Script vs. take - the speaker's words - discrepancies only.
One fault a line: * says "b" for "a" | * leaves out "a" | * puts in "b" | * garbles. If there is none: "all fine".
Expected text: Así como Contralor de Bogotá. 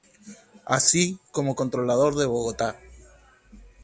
all fine